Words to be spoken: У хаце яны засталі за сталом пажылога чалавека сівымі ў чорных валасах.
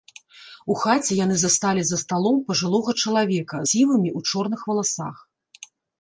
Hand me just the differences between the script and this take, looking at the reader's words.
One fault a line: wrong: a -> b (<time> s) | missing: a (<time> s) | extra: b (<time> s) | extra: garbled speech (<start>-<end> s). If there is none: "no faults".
no faults